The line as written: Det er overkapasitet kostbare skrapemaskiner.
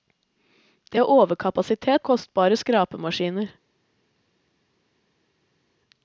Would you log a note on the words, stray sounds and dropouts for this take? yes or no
no